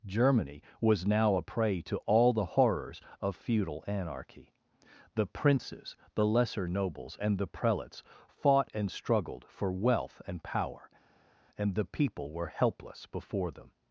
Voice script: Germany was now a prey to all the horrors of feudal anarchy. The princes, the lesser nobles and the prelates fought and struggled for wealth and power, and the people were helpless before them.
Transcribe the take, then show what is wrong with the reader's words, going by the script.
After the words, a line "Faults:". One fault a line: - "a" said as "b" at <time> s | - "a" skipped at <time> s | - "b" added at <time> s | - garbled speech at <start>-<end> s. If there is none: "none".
Germany was now a prey to all the horrors of feudal anarchy. The princes, the lesser nobles and the prelates fought and struggled for wealth and power, and the people were helpless before them.
Faults:
none